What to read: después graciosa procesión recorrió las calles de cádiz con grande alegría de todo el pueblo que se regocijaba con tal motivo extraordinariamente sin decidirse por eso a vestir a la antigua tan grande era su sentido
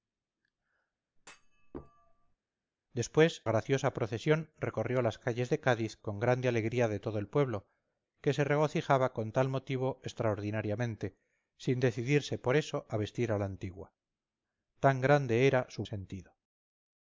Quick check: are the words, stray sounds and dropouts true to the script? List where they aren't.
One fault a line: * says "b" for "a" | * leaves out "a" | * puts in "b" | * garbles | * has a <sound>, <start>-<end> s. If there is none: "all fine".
* has a thud, 1.2-2.4 s